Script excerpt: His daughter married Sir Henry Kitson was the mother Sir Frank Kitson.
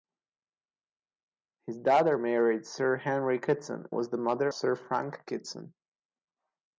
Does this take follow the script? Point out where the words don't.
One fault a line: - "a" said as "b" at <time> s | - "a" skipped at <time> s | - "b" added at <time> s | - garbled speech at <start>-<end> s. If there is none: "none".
none